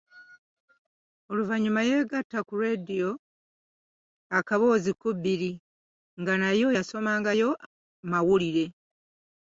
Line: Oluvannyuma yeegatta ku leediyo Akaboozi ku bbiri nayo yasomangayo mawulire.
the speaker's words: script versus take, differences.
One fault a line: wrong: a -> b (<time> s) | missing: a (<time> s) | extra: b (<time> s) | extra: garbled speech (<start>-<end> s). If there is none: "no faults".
extra: nga (6.2 s)